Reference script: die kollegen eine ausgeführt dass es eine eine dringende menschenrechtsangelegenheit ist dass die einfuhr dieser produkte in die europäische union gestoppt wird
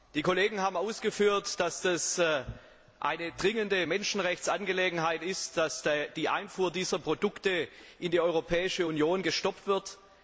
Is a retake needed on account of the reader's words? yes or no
yes